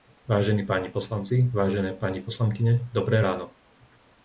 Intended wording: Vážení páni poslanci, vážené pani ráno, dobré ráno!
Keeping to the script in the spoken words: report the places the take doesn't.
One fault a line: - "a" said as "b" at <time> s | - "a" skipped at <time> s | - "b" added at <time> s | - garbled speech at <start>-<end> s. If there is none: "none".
- "ráno" said as "poslankyne" at 2.2 s